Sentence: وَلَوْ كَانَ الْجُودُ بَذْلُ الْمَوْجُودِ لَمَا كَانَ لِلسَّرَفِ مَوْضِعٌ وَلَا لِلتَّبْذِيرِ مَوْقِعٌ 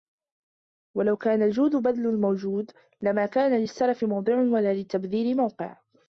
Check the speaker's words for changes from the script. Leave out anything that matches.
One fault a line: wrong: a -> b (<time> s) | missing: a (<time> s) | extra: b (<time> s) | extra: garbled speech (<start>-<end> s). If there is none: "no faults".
no faults